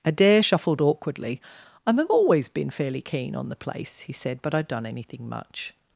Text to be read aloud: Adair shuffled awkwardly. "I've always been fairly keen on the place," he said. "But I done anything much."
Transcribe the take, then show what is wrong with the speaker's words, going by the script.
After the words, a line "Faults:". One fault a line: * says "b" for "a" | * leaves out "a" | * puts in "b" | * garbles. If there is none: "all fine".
Adair shuffled awkwardly. "I've always been fairly keen on the place," he said. "But I done anything much."
Faults:
all fine